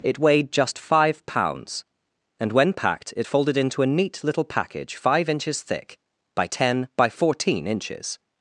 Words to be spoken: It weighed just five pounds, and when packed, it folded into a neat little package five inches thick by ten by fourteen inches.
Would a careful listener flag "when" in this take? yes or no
no